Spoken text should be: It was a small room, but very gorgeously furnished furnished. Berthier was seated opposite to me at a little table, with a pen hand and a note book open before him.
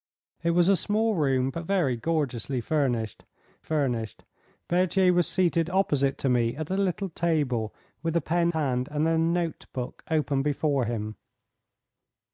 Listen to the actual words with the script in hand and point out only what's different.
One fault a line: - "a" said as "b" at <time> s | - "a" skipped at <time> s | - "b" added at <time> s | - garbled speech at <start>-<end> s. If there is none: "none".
none